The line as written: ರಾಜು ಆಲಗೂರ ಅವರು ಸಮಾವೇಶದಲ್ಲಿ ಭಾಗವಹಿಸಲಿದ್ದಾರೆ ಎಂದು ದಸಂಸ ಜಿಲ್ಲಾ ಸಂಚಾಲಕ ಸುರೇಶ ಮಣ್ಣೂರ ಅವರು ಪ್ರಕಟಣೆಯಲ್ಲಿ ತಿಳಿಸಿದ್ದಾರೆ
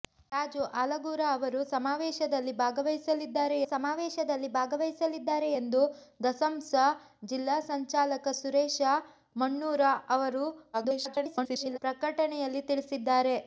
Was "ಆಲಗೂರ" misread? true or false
false